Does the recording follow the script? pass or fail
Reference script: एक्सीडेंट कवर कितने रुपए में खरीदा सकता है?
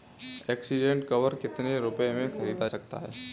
pass